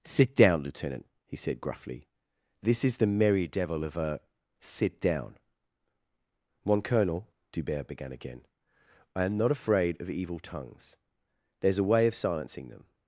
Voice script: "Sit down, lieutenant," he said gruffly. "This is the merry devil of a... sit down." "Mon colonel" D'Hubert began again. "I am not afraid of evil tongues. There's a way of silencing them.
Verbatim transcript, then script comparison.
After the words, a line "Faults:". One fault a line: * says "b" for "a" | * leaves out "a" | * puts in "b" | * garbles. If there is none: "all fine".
"Sit down, lieutenant," he said gruffly. "This is the merry devil of a... sit down." "Mon colonel" D'Hubert began again. "I am not afraid of evil tongues. There's a way of silencing them.
Faults:
all fine